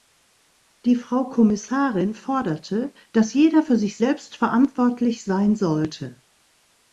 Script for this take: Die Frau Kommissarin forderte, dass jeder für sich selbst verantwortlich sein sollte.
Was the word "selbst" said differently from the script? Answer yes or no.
no